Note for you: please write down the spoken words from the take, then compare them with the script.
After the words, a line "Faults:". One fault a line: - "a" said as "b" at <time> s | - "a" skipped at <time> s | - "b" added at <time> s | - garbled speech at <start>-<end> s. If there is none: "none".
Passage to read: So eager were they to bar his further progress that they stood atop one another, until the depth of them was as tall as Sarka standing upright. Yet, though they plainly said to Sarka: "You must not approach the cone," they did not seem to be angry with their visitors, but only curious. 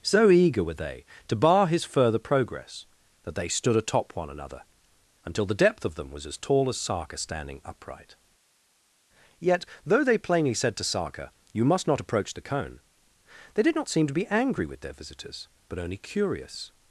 So eager were they to bar his further progress that they stood atop one another, until the depth of them was as tall as Sarka standing upright. Yet, though they plainly said to Sarka: "You must not approach the cone," they did not seem to be angry with their visitors, but only curious.
Faults:
none